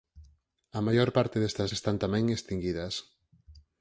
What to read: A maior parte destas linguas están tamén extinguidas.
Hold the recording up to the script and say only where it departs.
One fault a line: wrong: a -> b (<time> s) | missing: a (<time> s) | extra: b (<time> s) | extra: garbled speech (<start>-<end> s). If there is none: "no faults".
missing: linguas (1.7 s)